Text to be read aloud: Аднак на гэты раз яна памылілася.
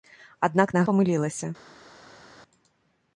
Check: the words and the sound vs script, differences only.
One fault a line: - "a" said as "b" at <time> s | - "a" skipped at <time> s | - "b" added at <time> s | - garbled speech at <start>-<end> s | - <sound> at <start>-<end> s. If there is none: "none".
- "гэты раз яна" skipped at 0.8 s